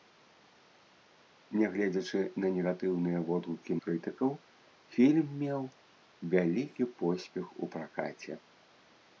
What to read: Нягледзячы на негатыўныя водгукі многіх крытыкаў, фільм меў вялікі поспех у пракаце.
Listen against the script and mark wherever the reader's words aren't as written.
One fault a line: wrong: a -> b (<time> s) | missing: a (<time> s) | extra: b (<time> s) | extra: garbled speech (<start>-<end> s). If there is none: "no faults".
missing: многіх (3.8 s)